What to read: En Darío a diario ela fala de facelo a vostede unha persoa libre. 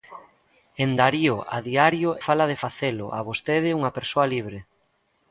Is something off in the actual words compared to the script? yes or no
yes